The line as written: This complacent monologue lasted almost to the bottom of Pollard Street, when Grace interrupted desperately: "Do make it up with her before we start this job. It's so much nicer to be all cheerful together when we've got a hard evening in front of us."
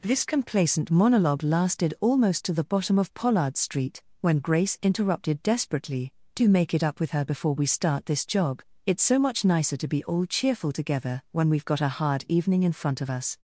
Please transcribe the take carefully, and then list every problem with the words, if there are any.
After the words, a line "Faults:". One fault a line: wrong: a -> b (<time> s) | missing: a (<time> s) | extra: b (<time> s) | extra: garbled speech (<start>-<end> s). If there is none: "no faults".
This complacent monologue lasted almost to the bottom of Pollard Street, when Grace interrupted desperately: "Do make it up with her before we start this job. It's so much nicer to be all cheerful together when we've got a hard evening in front of us."
Faults:
no faults